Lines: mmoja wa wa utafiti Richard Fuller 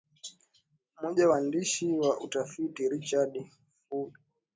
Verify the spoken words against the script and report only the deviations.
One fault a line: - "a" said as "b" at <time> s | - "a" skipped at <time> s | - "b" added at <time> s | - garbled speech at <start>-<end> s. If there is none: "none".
- "waandishi" added at 1.3 s